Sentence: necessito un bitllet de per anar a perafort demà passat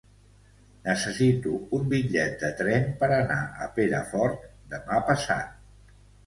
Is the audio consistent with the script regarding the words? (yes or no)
no